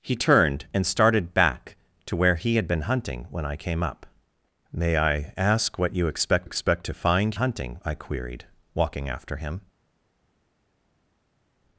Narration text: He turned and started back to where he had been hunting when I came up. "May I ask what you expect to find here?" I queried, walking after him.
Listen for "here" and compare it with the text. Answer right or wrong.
wrong